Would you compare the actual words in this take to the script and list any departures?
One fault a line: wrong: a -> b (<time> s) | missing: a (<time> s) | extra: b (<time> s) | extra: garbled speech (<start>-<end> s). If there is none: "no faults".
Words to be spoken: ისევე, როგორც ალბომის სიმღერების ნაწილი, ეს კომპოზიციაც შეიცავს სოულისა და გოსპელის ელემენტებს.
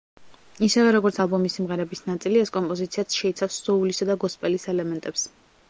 no faults